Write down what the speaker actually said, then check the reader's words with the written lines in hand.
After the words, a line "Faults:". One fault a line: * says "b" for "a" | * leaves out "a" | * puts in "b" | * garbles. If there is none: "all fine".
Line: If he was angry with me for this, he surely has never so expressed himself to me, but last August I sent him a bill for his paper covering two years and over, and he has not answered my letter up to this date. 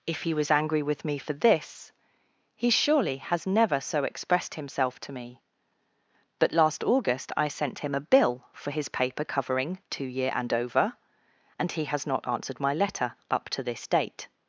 If he was angry with me for this, he surely has never so expressed himself to me, but last August I sent him a bill for his paper covering two year and over, and he has not answered my letter up to this date.
Faults:
* says "year" for "years"